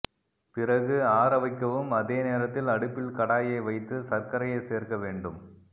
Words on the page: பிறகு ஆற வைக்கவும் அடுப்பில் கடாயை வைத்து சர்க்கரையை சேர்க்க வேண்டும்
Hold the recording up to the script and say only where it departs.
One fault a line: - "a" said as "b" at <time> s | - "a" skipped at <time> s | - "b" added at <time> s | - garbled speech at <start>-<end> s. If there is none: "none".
- "அதே நேரத்தில்" added at 2.0 s